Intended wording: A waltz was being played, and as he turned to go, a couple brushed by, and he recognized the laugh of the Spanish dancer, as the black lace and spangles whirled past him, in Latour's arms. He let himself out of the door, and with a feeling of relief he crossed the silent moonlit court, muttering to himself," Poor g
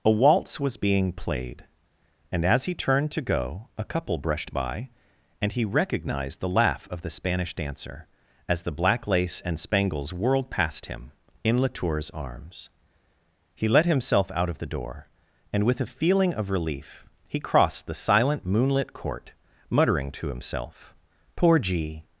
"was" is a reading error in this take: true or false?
false